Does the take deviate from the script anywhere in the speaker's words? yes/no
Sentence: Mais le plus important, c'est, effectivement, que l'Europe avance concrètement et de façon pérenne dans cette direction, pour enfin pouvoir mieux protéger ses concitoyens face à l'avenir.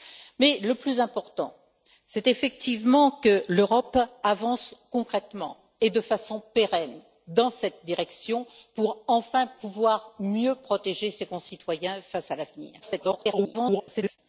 yes